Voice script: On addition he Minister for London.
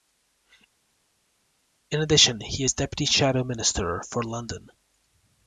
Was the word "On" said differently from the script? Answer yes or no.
yes